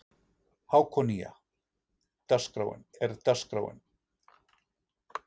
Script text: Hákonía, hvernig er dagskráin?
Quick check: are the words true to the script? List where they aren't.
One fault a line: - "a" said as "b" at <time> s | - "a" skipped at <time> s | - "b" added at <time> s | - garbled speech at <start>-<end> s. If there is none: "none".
- "hvernig" said as "dagskráin" at 2.3 s